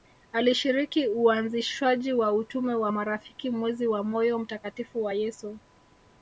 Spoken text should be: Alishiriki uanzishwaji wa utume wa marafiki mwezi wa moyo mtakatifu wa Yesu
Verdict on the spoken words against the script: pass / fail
pass